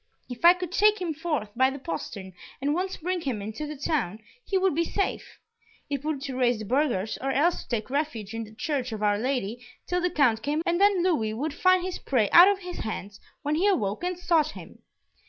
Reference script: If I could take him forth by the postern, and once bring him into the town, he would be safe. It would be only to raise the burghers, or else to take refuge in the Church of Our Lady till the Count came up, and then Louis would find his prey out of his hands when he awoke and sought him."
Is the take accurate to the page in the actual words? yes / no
no